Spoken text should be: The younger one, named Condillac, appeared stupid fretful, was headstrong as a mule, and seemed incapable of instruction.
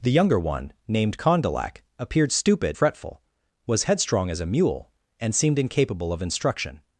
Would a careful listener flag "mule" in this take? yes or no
no